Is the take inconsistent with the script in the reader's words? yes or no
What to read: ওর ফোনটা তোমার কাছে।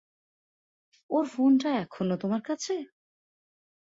yes